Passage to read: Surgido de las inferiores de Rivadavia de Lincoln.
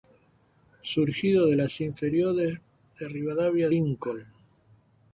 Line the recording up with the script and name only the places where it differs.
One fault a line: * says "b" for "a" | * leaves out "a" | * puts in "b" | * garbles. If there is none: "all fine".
* leaves out "de"